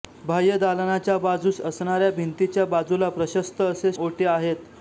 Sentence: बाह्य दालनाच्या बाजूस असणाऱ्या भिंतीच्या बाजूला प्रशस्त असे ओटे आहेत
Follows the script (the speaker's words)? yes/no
yes